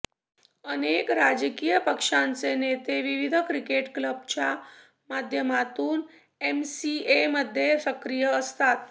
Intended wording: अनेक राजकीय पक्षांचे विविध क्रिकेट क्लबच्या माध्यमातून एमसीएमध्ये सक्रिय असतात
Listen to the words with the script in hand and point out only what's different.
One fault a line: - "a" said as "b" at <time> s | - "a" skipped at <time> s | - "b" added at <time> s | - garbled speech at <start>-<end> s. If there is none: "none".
- "नेते" added at 2.5 s